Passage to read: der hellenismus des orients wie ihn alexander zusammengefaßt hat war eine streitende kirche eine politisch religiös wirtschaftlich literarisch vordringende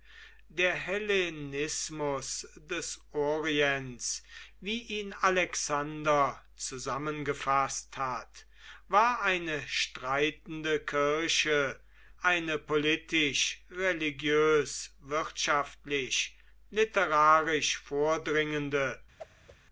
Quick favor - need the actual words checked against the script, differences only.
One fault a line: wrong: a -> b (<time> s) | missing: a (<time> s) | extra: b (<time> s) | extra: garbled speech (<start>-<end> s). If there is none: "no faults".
no faults